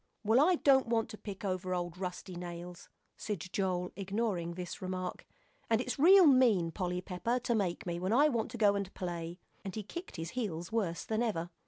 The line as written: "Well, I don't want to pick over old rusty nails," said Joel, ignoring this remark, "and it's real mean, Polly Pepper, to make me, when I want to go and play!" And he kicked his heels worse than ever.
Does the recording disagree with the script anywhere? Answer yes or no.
no